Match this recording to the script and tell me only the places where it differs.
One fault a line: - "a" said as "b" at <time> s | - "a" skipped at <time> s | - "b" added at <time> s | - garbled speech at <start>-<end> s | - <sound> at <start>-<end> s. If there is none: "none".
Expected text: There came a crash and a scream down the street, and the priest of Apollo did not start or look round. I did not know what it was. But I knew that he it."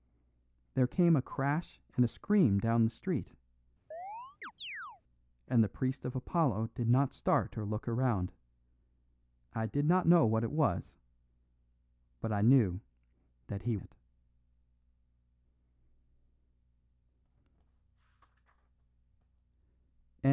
- chirp at 3.9-5.0 s